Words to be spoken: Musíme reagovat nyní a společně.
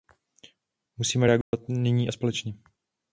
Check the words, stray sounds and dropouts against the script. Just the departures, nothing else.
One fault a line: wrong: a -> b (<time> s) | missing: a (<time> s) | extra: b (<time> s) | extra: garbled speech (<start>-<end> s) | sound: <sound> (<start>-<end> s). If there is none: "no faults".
sound: dropout (1.4-1.5 s)